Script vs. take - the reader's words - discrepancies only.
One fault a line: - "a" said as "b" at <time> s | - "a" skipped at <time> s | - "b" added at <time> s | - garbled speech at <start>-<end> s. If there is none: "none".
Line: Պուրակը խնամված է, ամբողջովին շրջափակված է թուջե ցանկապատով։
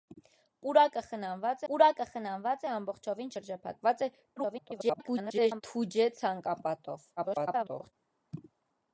- "պուրակը խնամված" added at 1.7 s
- garbled speech at 4.4-5.6 s
- garbled speech at 7.2-7.9 s